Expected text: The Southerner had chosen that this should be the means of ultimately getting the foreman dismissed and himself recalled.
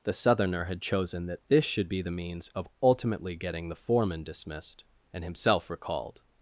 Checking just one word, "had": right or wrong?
right